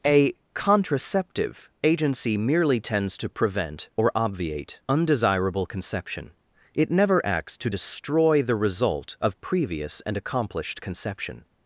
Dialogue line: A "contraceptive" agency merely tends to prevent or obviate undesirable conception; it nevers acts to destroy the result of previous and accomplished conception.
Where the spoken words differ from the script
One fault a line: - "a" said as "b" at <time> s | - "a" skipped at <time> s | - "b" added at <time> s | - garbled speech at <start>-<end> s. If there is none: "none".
- "nevers" said as "never" at 6.9 s